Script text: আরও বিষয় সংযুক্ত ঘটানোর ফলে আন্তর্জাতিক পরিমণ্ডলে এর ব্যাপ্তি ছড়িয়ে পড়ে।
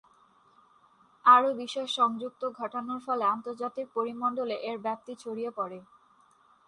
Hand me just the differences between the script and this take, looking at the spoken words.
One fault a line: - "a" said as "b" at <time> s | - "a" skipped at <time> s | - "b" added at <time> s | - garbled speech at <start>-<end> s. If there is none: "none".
none